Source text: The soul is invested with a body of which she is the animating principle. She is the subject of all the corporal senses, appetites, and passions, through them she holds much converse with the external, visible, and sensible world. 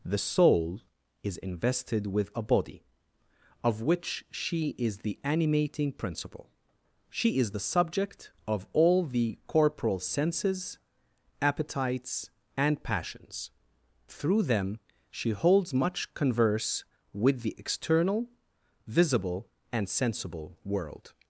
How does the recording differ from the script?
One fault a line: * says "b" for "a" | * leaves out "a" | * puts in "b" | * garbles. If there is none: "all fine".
all fine